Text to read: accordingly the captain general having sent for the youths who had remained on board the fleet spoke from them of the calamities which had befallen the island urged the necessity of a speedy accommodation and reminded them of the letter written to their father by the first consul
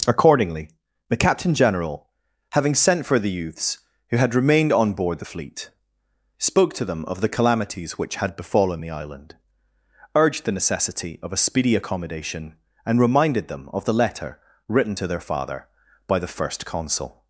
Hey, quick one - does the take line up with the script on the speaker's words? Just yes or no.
no